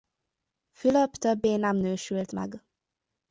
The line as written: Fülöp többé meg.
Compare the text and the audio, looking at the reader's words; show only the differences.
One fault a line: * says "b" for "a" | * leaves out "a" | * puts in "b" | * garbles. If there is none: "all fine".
* puts in "nem nősült"